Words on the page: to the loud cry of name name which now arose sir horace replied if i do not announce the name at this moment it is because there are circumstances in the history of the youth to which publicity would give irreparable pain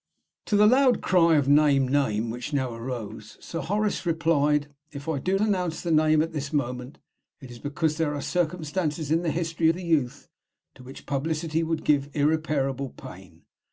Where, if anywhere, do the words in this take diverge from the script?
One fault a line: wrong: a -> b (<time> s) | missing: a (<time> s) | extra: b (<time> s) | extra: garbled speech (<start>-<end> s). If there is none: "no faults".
missing: not (5.4 s)
missing: of (9.7 s)